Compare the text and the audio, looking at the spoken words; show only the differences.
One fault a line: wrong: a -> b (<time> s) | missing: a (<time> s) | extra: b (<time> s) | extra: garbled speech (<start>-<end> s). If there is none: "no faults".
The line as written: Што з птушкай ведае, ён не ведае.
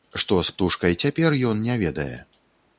wrong: ведае -> цяпер (1.0 s)